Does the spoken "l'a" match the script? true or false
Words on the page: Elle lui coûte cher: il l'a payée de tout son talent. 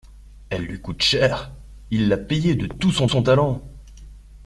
true